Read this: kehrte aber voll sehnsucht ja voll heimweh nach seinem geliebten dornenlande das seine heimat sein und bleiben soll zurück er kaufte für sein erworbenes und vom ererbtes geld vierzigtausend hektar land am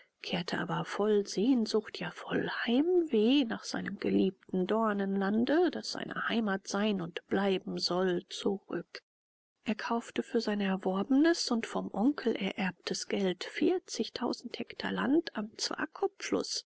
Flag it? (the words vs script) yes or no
yes